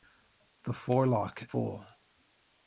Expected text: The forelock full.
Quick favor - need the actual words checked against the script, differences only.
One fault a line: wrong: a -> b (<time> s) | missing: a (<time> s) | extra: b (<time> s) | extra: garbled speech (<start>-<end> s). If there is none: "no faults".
no faults